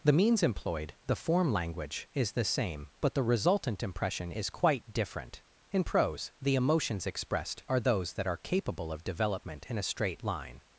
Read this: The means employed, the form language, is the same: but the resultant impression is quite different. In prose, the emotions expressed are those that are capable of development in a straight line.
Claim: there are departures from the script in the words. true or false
false